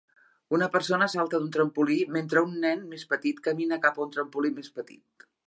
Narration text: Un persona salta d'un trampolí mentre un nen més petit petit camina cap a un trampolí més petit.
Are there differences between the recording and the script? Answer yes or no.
yes